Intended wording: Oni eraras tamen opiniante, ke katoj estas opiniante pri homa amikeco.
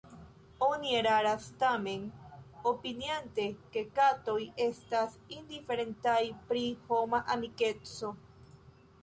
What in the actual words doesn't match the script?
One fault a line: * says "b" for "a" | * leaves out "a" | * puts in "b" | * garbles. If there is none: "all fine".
* says "indiferentaj" for "opiniante"